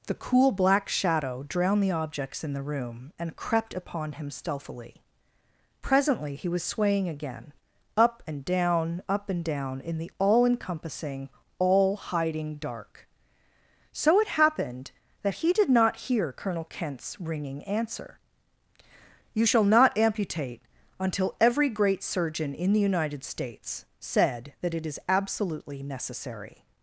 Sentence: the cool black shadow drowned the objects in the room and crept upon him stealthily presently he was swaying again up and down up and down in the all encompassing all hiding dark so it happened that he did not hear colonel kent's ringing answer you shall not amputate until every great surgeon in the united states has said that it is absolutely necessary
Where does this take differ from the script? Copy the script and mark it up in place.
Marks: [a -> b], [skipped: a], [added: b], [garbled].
the cool black shadow drowned the objects in the room and crept upon him stealthily presently he was swaying again up and down up and down in the all encompassing all hiding dark so it happened that he did not hear colonel kent's ringing answer you shall not amputate until every great surgeon in the united states [skipped: has] said that it is absolutely necessary